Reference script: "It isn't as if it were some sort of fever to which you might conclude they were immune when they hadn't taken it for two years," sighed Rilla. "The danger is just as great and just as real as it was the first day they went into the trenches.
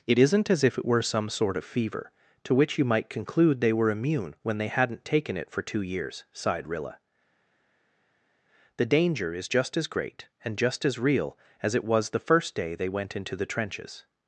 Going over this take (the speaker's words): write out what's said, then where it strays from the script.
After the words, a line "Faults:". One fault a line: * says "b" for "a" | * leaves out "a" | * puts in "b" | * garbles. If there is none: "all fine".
"It isn't as if it were some sort of fever to which you might conclude they were immune when they hadn't taken it for two years," sighed Rilla. "The danger is just as great and just as real as it was the first day they went into the trenches.
Faults:
all fine